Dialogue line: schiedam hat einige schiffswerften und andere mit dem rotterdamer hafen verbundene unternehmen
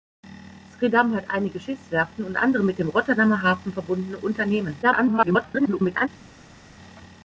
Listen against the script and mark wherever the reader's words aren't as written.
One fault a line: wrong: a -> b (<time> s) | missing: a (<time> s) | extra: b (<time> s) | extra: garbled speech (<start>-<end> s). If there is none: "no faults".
extra: garbled speech (4.8-6.1 s)